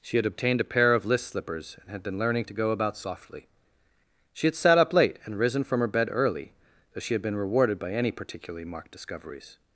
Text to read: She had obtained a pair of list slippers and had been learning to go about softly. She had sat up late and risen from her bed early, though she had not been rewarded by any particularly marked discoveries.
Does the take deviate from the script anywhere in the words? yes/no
yes